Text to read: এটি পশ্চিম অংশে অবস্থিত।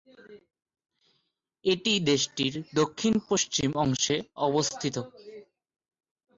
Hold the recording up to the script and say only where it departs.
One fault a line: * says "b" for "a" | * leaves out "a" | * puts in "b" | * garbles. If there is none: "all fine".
* puts in "দেশটির দক্ষিণ"